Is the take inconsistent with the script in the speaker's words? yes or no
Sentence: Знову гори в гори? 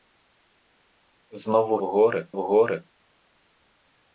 no